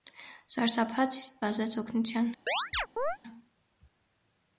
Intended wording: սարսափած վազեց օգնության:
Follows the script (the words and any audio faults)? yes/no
no